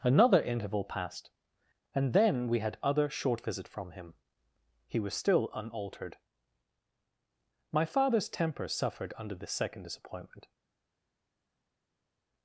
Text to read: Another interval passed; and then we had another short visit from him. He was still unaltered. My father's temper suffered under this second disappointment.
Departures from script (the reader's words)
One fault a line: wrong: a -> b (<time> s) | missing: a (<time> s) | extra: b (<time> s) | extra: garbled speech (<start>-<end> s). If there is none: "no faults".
wrong: another -> other (2.8 s)